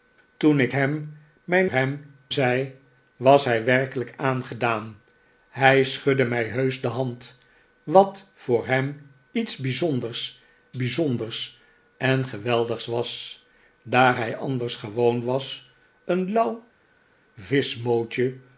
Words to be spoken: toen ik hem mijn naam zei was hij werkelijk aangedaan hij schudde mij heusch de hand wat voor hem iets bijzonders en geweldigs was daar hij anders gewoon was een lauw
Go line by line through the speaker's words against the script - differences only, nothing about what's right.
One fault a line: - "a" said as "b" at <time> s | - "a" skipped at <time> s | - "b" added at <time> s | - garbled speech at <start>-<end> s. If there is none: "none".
- "naam" said as "hem" at 1.7 s
- "bijzonders" added at 10.7 s